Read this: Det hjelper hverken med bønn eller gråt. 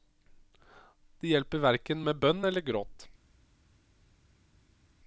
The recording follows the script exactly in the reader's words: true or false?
true